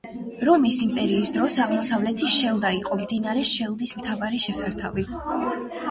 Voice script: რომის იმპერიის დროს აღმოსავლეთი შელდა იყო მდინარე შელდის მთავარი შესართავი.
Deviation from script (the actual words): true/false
false